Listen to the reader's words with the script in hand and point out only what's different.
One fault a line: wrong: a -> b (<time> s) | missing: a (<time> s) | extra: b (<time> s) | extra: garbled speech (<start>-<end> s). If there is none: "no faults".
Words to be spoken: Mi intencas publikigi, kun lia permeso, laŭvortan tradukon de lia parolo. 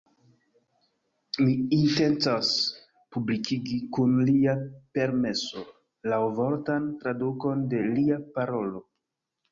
no faults